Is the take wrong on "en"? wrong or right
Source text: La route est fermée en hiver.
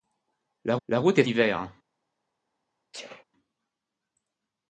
wrong